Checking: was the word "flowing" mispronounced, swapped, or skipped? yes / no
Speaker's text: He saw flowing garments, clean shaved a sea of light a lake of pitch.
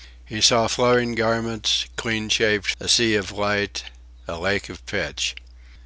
no